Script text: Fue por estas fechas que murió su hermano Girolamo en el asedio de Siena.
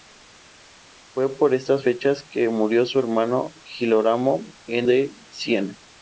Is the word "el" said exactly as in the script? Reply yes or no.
no